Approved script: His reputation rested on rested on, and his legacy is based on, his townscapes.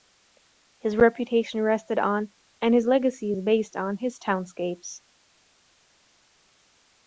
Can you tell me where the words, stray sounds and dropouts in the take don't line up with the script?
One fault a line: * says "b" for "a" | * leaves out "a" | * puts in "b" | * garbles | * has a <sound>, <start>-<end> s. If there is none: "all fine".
* leaves out "rested on"